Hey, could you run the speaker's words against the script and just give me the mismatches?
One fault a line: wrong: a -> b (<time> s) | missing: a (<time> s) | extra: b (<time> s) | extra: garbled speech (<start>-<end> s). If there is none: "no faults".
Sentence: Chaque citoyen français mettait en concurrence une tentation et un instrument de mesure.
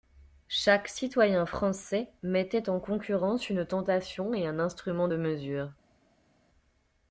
no faults